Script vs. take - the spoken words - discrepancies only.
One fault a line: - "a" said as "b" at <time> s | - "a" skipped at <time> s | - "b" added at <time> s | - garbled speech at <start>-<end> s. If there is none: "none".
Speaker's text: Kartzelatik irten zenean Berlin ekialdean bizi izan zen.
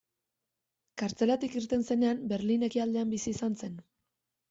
none